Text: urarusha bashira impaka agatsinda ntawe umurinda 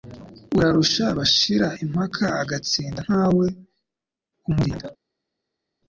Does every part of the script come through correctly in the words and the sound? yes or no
yes